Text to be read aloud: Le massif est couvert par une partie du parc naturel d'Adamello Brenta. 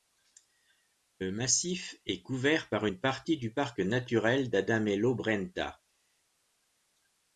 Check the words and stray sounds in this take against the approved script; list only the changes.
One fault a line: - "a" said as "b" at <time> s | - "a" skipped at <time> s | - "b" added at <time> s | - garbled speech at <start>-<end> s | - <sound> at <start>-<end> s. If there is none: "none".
none